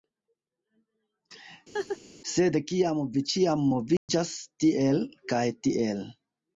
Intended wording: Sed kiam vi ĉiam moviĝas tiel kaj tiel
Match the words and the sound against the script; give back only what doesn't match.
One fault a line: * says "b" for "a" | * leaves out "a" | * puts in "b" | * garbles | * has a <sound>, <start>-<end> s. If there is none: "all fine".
* has a laugh, 1.7-2.0 s
* has a dropout, 4.0-4.1 s